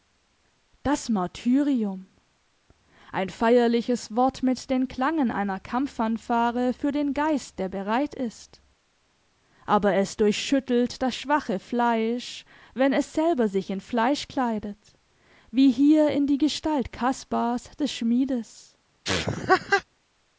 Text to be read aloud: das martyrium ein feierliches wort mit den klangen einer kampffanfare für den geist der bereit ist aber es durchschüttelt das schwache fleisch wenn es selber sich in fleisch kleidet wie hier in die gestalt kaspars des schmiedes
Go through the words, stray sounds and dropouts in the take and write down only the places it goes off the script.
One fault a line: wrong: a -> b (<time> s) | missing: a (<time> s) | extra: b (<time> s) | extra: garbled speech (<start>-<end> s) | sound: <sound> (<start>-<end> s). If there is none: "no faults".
sound: laugh (19.0-19.8 s)